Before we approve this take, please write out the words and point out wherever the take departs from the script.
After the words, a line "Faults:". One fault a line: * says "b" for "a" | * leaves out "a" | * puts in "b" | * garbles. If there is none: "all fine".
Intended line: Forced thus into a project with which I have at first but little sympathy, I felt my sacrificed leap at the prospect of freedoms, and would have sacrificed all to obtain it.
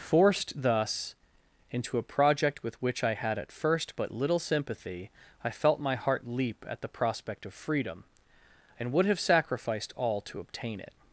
Forced thus into a project with which I had at first but little sympathy, I felt my heart leap at the prospect of freedom, and would have sacrificed all to obtain it.
Faults:
* says "had" for "have"
* says "heart" for "sacrificed"
* says "freedom" for "freedoms"